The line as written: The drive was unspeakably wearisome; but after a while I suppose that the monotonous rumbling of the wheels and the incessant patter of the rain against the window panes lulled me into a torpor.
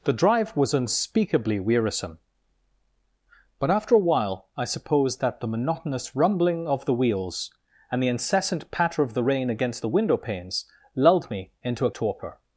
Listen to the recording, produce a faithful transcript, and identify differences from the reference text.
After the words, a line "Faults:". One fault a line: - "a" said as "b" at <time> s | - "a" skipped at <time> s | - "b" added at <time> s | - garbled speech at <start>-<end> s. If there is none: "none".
The drive was unspeakably wearisome; but after a while I suppose that the monotonous rumbling of the wheels and the incessant patter of the rain against the window panes lulled me into a torpor.
Faults:
none